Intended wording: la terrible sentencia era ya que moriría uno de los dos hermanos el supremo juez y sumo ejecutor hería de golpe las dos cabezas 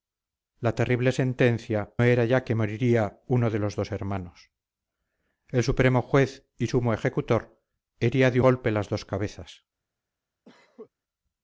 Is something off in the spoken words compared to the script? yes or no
no